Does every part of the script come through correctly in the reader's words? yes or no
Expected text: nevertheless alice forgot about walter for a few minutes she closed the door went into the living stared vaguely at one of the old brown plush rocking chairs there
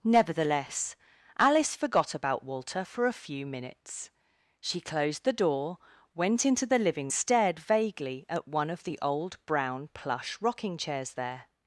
yes